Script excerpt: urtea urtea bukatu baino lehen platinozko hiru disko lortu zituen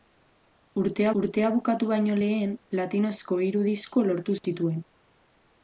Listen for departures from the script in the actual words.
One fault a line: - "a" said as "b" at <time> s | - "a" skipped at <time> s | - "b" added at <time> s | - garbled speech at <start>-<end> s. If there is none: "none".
none